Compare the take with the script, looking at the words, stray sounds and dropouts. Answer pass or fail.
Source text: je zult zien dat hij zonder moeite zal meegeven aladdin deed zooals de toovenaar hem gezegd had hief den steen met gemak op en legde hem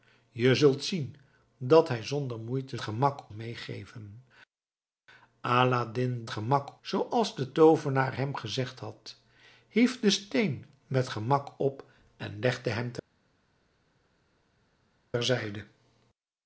fail